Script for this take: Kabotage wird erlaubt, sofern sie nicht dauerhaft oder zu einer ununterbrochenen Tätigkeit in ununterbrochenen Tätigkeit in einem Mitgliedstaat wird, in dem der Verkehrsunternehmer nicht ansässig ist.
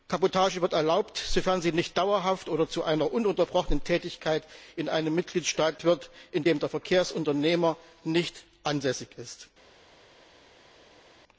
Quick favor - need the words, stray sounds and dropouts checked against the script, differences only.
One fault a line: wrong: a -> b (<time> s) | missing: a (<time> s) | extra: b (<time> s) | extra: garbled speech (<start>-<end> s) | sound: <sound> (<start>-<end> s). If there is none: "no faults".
missing: ununterbrochenen Tätigkeit in (4.9 s)